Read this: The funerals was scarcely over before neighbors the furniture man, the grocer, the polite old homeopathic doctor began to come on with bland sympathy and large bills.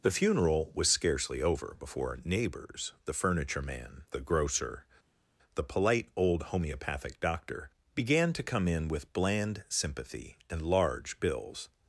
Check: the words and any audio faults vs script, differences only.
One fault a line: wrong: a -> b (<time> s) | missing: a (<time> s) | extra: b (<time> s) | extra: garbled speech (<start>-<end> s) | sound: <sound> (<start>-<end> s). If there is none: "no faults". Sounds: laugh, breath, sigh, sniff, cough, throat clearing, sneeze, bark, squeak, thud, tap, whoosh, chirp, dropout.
wrong: funerals -> funeral (0.1 s)
wrong: on -> in (8.7 s)